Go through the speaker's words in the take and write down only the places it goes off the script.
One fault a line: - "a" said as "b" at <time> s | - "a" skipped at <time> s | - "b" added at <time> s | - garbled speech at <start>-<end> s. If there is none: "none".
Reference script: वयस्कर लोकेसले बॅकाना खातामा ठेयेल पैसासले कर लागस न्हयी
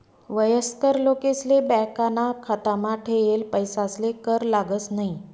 none